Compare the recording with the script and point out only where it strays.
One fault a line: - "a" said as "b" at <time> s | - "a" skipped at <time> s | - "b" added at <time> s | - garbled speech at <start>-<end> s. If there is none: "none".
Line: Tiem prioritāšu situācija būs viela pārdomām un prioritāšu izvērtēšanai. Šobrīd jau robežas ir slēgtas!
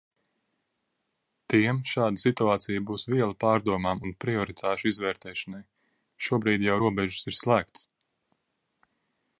- "prioritāšu" said as "šāda" at 1.9 s